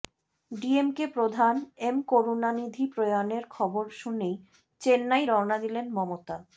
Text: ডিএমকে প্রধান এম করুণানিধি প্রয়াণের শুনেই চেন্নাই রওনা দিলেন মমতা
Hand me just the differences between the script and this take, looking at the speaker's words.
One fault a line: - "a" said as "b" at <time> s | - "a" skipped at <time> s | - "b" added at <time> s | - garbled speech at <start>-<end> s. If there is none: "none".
- "খবর" added at 3.5 s